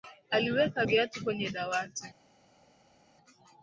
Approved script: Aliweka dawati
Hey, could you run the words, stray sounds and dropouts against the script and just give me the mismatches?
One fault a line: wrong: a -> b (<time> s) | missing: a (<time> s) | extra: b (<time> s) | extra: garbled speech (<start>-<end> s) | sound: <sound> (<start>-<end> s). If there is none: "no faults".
extra: viatu kwenye (0.8 s)